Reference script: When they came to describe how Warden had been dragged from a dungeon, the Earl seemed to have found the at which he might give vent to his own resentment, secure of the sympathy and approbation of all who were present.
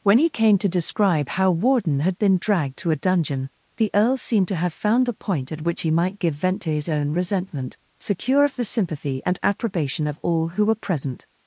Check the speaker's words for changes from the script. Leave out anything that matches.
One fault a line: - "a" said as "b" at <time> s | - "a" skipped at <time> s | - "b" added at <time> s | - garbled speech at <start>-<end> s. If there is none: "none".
- "they" said as "he" at 0.2 s
- "from" said as "to" at 2.8 s
- "point" added at 5.1 s